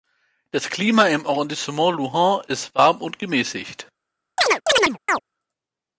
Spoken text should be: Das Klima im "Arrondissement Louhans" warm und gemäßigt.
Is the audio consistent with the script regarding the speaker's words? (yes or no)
no